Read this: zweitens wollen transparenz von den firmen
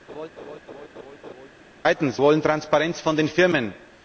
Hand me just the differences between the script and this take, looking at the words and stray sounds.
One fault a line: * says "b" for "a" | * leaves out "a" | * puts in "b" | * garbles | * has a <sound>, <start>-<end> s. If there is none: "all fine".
* has a laugh, 0.1-1.5 s